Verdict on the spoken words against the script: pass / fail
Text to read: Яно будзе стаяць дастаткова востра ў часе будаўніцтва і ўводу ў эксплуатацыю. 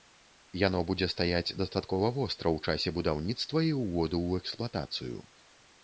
pass